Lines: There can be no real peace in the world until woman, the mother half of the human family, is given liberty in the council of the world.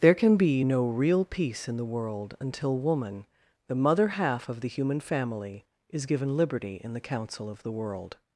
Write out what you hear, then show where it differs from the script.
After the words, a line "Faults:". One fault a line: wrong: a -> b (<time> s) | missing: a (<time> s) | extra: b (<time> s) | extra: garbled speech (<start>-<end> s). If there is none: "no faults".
There can be no real peace in the world until woman, the mother half of the human family, is given liberty in the council of the world.
Faults:
no faults